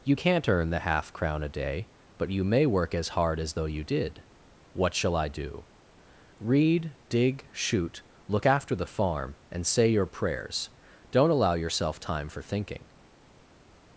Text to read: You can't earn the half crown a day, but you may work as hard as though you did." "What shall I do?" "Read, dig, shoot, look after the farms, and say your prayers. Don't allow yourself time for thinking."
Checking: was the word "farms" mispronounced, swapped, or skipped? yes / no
yes